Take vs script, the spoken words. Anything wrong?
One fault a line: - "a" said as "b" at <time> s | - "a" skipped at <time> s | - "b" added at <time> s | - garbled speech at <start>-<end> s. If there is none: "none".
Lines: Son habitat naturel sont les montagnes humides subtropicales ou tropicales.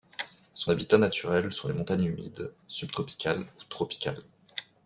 none